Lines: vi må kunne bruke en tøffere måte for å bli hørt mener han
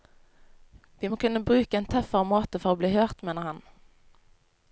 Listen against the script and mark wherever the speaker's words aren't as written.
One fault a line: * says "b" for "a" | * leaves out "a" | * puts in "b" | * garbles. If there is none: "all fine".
all fine